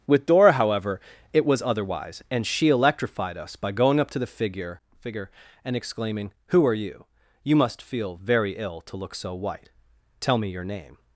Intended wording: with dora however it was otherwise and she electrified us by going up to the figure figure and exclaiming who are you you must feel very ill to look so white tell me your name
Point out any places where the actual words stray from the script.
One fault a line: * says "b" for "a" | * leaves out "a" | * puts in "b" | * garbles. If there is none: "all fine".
all fine